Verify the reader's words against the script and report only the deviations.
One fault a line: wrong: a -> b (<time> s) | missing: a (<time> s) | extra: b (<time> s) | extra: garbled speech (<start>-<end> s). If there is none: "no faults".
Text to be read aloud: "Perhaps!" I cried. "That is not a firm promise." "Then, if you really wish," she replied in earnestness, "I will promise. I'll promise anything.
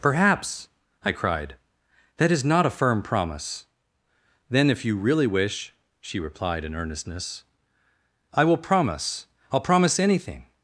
no faults